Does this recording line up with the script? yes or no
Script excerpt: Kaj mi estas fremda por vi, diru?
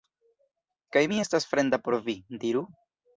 yes